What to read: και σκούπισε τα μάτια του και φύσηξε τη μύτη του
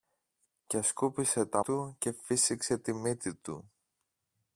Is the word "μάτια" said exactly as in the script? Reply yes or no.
no